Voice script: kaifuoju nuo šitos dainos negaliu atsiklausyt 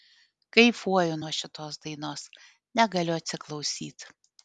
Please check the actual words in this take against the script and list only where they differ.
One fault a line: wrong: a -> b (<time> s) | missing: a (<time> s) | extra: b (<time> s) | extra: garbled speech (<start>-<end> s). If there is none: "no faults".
no faults